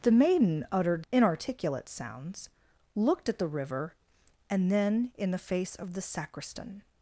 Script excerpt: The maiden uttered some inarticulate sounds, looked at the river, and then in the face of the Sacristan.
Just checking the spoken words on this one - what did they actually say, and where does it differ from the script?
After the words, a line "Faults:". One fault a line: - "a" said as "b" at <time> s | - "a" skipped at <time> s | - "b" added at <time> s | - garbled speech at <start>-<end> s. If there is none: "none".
The maiden uttered inarticulate sounds, looked at the river, and then in the face of the Sacristan.
Faults:
- "some" skipped at 1.1 s